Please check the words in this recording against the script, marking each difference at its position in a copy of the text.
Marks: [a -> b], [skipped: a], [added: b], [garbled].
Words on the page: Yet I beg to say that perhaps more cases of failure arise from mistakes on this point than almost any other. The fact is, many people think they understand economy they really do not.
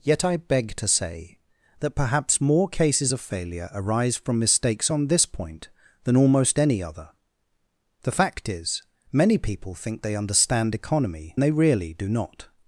Yet I beg to say that perhaps more cases of failure arise from mistakes on this point than almost any other. The fact is, many people think they understand economy they really do not.